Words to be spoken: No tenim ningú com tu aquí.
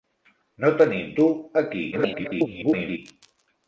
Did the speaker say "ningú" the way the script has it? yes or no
no